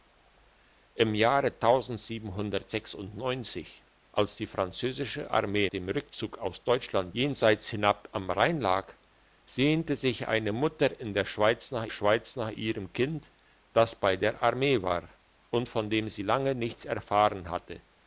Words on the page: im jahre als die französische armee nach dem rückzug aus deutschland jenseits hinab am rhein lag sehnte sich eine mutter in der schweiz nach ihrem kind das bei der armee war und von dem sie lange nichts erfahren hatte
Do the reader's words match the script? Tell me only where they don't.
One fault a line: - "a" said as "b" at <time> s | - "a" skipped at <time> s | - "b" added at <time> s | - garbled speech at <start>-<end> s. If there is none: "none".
- "nach" skipped at 5.7 s
- "schweiz nach" added at 11.9 s